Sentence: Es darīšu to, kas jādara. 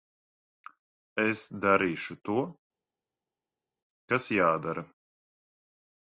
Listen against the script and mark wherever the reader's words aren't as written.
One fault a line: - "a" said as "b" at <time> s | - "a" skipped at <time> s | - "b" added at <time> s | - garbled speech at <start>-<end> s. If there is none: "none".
none